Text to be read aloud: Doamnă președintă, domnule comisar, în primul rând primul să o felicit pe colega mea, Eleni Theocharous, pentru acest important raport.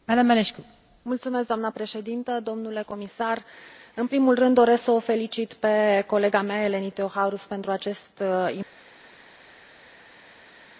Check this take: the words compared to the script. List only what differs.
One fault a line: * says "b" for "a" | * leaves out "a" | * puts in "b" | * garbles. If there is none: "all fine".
* says "doresc" for "primul"